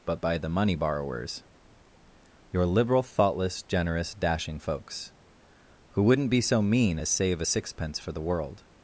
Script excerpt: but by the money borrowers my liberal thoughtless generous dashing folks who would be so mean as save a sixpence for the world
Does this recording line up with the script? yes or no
no